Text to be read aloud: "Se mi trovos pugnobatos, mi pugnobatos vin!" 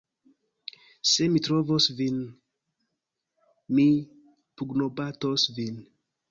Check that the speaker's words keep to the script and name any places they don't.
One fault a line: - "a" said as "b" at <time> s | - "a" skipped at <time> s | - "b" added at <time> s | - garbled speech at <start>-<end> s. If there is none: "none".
- "pugnobatos" said as "vin" at 2.0 s